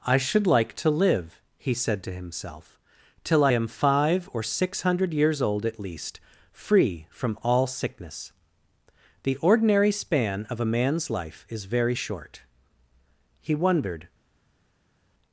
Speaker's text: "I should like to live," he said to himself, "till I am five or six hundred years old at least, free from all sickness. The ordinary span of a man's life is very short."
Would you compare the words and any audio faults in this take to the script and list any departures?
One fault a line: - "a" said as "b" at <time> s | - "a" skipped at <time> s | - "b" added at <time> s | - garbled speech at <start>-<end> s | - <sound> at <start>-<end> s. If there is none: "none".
- "He wondered" added at 13.4 s